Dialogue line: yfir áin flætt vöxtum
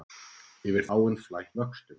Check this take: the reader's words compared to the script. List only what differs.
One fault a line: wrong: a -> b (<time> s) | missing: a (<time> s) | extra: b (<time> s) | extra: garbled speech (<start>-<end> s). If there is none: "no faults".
no faults